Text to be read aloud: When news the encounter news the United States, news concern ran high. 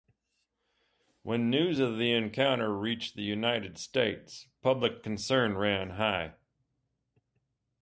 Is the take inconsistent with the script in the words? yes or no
yes